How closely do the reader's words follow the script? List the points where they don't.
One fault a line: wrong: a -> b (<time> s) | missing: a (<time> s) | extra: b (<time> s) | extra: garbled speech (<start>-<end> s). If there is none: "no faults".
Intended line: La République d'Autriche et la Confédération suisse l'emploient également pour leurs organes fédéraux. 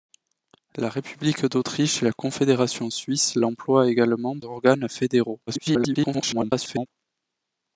missing: pour leurs (4.4 s)
extra: garbled speech (5.5-6.9 s)